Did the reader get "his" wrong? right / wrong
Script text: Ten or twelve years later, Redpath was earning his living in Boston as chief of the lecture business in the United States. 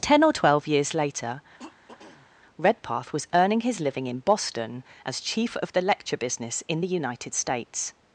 right